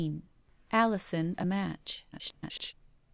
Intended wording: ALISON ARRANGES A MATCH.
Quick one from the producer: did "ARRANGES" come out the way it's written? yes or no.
no